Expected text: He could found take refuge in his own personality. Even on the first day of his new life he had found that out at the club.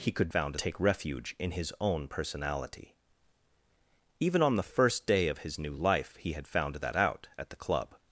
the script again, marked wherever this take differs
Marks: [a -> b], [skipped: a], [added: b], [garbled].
He could found take refuge in his own personality. Even on the first day of his new life he had found that out at the club.